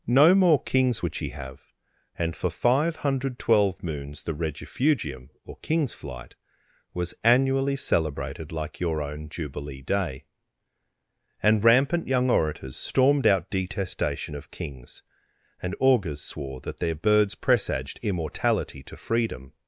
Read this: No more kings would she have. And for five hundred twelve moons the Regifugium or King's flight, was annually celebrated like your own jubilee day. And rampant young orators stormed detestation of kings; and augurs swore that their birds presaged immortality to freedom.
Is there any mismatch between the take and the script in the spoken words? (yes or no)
yes